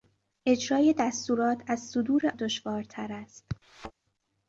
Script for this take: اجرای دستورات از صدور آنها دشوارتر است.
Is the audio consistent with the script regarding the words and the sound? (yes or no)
no